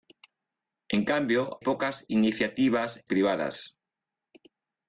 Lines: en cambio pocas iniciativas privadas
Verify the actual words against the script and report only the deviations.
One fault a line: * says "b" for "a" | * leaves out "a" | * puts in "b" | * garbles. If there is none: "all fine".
all fine